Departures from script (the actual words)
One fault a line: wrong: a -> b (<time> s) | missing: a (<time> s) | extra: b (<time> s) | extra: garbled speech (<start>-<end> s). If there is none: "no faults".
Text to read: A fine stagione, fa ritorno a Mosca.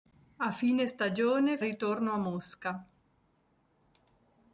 missing: fa (1.6 s)